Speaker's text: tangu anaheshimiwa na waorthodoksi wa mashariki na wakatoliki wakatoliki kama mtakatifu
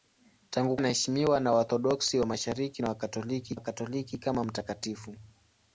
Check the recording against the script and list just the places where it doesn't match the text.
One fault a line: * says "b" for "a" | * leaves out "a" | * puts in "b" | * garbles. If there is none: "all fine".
all fine